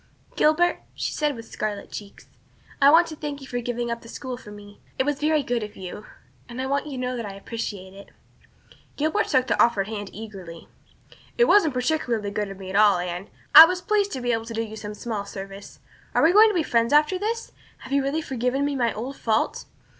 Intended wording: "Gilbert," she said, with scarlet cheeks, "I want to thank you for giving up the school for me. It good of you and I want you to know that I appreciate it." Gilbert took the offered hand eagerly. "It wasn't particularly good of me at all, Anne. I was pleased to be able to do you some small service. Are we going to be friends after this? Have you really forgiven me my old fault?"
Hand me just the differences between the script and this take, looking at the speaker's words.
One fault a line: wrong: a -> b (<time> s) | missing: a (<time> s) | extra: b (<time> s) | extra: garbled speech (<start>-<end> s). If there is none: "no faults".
extra: was very (5.0 s)